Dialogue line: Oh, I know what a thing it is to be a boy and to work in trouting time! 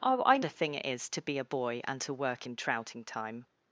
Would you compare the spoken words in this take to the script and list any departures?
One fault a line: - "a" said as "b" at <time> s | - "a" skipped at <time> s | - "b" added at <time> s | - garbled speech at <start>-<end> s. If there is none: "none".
- "know what" skipped at 0.4 s